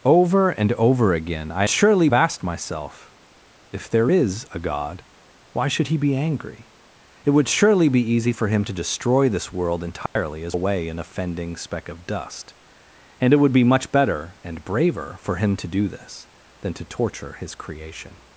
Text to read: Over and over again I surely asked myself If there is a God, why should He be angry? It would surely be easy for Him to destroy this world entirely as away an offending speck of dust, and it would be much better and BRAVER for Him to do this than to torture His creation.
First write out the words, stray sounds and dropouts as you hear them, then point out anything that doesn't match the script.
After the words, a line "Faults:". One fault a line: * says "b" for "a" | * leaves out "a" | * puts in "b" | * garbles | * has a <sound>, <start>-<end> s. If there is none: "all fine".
Over and over again I surely asked myself If there is a God, why should He be angry? It would surely be easy for Him to destroy this world entirely as away an offending speck of dust, and it would be much better and BRAVER for Him to do this than to torture His creation.
Faults:
* has a dropout, 10.1-10.2 s